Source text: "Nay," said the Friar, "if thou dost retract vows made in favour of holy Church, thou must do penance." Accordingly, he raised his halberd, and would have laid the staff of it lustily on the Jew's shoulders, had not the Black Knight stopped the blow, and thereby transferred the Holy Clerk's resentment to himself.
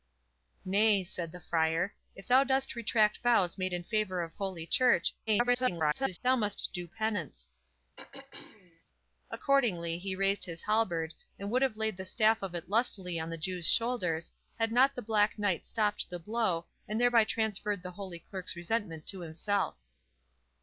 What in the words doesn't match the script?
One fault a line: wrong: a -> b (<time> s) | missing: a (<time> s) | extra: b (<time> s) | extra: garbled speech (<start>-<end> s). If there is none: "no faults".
extra: garbled speech (5.3-6.2 s)